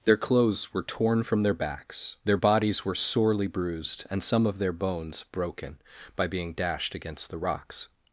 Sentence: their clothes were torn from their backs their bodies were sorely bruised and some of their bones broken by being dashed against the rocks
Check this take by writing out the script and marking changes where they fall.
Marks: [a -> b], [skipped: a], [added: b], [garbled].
their clothes were torn from their backs their bodies were sorely bruised and some of their bones broken by being dashed against the rocks